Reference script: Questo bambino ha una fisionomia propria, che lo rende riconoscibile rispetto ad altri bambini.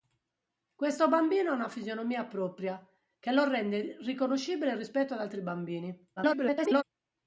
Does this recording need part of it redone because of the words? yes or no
yes